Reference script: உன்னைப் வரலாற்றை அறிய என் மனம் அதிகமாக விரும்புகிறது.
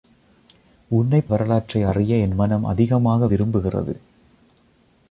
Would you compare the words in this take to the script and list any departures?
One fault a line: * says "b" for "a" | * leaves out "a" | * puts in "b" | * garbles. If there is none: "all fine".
all fine